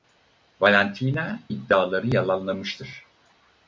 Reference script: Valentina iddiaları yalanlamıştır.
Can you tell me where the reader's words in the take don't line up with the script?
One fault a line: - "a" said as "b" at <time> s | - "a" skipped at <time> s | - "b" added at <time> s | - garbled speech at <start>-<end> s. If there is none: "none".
none